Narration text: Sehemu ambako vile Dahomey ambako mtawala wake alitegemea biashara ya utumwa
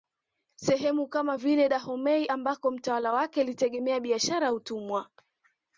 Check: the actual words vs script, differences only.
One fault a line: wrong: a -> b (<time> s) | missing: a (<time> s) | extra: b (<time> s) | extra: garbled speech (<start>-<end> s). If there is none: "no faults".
wrong: ambako -> kama (1.1 s)